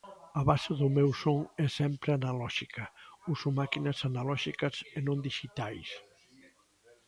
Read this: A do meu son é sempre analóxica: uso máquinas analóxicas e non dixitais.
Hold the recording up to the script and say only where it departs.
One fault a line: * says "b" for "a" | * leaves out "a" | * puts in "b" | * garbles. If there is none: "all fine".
* puts in "base"